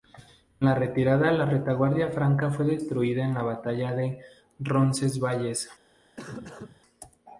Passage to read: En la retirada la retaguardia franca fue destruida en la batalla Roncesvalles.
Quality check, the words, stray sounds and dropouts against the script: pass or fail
fail